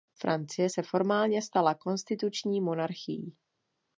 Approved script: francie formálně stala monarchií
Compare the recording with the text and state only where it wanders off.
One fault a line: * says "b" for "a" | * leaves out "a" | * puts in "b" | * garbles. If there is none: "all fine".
* puts in "se"
* puts in "konstituční"